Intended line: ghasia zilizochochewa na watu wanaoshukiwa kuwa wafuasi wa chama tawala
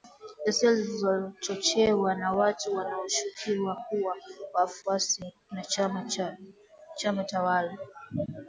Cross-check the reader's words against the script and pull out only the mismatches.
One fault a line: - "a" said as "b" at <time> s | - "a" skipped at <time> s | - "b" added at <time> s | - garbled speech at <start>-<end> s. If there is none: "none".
none